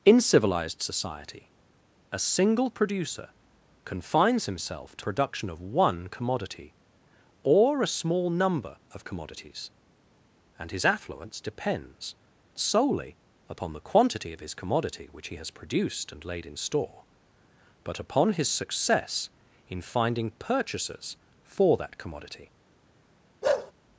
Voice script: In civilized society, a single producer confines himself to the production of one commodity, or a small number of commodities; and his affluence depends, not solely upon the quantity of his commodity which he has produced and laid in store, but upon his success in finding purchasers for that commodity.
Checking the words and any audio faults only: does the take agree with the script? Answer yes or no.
no